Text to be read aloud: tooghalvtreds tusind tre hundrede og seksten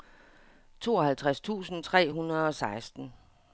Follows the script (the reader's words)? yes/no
yes